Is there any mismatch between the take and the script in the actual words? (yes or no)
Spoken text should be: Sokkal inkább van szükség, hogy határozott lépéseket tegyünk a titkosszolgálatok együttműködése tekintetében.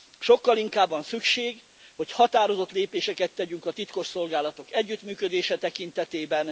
no